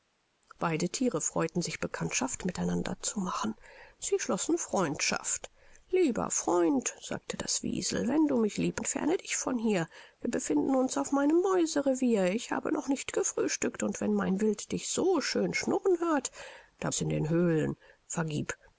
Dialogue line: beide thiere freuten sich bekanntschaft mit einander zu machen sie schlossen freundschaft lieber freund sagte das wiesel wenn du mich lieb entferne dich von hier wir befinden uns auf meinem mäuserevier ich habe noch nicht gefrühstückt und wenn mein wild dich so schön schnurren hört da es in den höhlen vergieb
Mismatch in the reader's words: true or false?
false